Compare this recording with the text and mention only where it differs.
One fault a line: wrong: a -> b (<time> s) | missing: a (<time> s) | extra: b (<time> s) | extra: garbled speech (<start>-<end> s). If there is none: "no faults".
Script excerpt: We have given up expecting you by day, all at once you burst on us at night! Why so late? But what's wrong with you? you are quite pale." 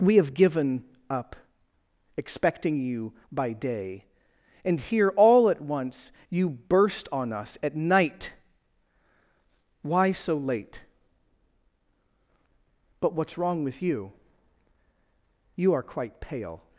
extra: and here (4.6 s)